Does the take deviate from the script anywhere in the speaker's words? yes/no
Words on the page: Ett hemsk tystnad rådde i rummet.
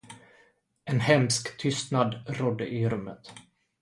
yes